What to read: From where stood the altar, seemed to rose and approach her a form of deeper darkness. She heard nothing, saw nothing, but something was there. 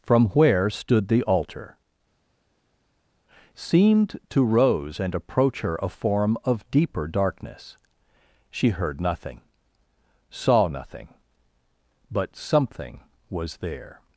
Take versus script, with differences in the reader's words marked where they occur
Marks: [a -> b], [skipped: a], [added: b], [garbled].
From where stood the altar, seemed to rose and approach her a form of deeper darkness. She heard nothing, saw nothing, but something was there.